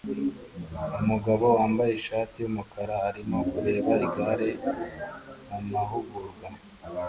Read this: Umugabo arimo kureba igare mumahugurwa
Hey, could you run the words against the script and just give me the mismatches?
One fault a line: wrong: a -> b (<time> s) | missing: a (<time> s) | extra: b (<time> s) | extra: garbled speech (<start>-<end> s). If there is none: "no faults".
extra: wambaye ishati yumukara (1.6 s)